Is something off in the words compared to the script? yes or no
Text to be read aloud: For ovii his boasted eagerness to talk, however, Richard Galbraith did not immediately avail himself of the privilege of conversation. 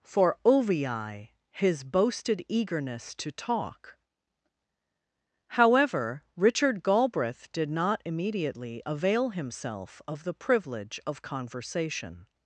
no